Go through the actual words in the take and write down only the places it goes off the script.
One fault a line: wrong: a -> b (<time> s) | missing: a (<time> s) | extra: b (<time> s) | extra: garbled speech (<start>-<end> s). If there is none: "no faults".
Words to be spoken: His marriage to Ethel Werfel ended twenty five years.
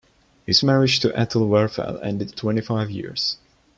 no faults